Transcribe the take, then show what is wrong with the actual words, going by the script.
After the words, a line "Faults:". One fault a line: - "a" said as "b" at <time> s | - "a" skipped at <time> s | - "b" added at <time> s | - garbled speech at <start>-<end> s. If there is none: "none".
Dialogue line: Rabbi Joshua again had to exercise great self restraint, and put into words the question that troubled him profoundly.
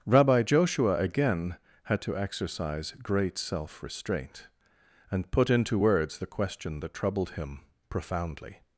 Rabbi Joshua again had to exercise great self restraint, and put into words the question that troubled him profoundly.
Faults:
none